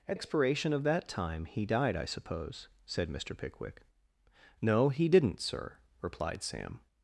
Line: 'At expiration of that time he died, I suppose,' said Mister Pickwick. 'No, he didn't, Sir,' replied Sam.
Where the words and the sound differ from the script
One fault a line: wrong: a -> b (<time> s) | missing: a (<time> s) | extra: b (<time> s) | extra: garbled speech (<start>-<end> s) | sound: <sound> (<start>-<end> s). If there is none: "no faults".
no faults